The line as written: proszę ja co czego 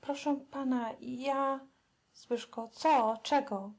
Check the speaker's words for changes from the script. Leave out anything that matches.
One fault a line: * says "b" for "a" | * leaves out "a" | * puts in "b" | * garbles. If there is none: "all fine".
* puts in "pana"